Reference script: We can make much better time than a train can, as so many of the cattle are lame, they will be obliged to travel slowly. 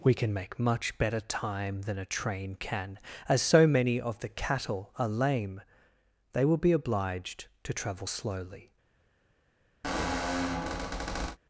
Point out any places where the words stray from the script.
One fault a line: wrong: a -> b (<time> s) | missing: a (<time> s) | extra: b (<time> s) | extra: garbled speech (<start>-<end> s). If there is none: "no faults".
no faults